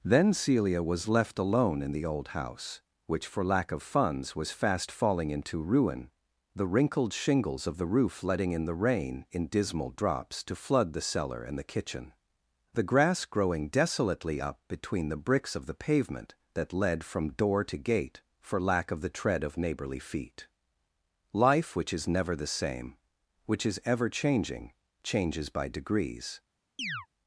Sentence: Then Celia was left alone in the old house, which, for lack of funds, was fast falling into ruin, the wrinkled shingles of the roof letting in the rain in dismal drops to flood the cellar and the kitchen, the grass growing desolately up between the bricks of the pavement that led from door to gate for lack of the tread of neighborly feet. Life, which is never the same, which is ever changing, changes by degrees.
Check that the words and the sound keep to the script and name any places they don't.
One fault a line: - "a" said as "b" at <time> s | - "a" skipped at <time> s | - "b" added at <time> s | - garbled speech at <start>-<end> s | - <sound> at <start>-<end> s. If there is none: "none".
- chirp at 26.8-27.1 s